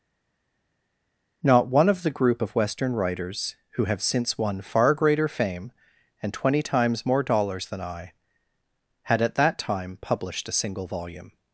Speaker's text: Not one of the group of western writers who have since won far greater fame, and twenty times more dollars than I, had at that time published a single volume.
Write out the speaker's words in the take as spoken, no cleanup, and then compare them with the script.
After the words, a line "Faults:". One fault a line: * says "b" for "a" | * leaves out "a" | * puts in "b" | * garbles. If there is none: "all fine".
Not one of the group of western writers who have since won far greater fame, and twenty times more dollars than I, had at that time published a single volume.
Faults:
all fine